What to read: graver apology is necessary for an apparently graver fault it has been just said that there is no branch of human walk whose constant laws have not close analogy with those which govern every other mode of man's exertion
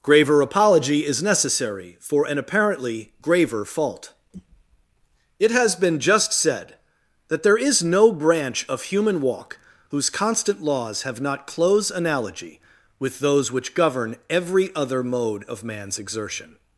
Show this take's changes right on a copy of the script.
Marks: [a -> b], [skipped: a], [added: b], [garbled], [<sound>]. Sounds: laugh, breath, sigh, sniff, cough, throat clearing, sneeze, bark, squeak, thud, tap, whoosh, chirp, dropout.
graver apology is necessary for an apparently graver fault it has been just said that there is no branch of human walk whose constant laws have not close analogy with those which govern every other mode of man's exertion